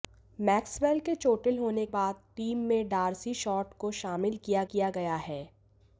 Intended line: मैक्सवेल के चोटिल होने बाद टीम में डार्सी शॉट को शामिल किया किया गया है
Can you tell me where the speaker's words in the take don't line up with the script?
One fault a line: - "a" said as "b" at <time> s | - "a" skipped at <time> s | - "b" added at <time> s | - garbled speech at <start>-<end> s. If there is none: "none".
none